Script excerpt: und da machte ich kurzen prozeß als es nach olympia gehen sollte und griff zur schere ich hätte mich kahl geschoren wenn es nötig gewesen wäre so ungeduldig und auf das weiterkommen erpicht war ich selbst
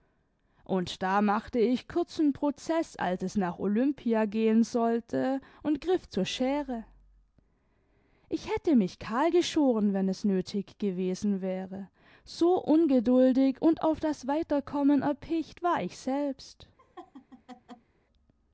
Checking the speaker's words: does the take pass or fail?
pass